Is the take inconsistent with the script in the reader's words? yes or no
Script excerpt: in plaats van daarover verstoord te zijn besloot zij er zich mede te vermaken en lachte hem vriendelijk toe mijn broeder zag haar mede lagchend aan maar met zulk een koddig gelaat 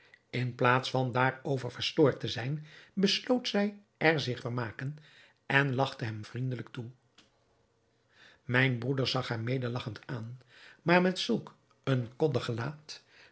yes